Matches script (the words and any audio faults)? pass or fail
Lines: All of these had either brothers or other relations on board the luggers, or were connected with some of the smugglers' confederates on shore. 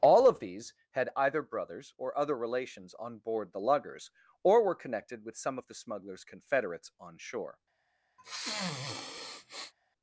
fail